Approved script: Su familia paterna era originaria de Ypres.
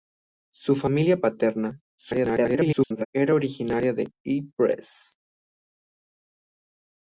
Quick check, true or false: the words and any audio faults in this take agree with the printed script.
false